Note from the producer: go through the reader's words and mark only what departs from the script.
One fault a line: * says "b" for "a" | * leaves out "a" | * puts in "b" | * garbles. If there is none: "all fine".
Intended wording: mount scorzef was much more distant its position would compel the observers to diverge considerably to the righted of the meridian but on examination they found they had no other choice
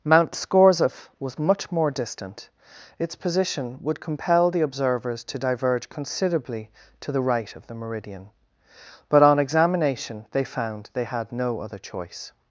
* says "right" for "righted"